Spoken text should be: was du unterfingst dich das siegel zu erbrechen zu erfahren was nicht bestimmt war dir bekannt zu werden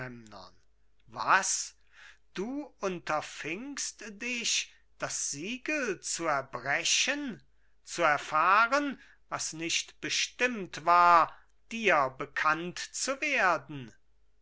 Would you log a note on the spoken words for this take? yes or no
no